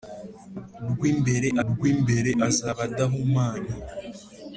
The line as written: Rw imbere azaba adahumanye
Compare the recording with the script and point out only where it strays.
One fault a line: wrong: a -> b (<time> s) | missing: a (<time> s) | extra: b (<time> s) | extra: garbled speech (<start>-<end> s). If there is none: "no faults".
extra: rw imbere (1.7 s)